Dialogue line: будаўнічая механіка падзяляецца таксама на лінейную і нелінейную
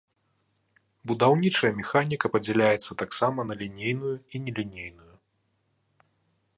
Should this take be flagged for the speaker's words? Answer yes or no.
no